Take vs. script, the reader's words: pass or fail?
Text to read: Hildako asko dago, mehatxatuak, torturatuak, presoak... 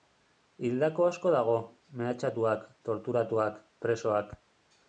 pass